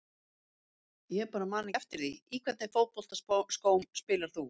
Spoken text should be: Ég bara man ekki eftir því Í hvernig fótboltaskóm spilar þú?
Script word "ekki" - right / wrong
wrong